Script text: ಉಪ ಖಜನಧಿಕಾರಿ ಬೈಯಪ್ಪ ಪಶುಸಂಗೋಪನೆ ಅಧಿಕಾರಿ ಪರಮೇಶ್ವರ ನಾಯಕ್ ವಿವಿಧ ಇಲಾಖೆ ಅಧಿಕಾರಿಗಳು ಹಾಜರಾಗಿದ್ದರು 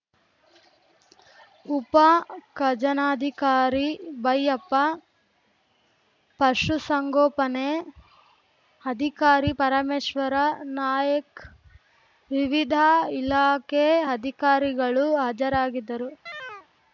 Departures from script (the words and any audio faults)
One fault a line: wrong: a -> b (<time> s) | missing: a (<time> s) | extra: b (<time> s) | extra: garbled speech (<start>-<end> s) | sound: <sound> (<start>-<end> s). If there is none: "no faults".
sound: chirp (16.3-16.7 s)